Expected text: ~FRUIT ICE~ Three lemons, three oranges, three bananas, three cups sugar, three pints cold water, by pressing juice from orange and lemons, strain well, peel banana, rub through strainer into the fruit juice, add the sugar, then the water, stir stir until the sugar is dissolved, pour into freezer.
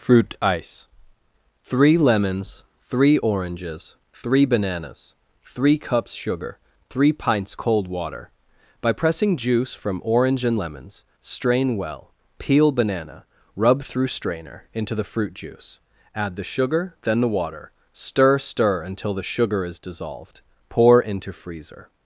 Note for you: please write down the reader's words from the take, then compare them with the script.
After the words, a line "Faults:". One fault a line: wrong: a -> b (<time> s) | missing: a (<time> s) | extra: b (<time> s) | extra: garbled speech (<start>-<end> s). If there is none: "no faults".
~FRUIT ICE~ Three lemons, three oranges, three bananas, three cups sugar, three pints cold water, by pressing juice from orange and lemons, strain well, peel banana, rub through strainer into the fruit juice, add the sugar, then the water, stir stir until the sugar is dissolved, pour into freezer.
Faults:
no faults